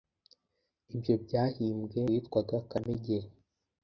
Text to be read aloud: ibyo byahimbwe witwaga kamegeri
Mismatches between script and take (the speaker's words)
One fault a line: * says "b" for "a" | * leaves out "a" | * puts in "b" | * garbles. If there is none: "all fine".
all fine